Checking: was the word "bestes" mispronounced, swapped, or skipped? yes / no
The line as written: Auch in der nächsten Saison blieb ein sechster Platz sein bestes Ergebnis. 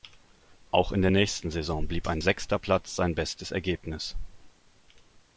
no